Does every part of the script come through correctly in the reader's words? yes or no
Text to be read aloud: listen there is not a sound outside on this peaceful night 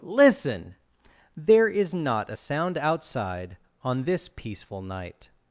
yes